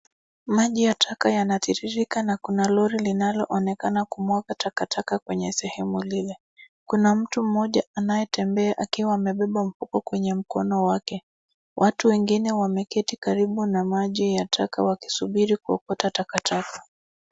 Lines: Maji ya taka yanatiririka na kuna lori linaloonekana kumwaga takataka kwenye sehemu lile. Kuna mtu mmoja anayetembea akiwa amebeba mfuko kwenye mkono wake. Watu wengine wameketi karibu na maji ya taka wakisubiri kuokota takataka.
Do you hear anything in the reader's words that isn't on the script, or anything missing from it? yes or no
no